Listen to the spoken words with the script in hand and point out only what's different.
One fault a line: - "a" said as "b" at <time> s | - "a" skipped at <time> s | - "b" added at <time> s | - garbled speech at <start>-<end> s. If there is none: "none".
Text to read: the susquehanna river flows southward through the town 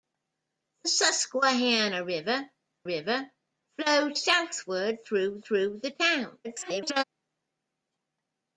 - "river" added at 2.8 s
- "through" added at 5.4 s
- garbled speech at 6.4-7.0 s